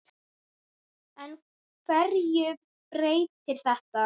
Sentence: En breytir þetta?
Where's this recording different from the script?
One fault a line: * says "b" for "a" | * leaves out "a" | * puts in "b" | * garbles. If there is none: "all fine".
* puts in "hverju"